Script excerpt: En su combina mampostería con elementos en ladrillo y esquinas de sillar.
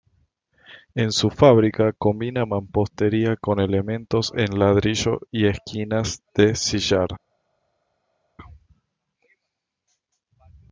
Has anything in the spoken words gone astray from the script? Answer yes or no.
yes